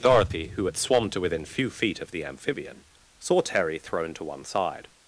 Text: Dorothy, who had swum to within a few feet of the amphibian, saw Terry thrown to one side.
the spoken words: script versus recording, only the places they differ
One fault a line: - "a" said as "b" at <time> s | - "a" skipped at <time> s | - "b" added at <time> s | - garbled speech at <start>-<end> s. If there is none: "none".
- "a" skipped at 1.4 s